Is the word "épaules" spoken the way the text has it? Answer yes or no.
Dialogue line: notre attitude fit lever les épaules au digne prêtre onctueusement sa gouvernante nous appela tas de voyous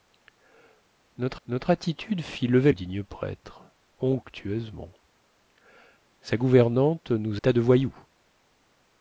no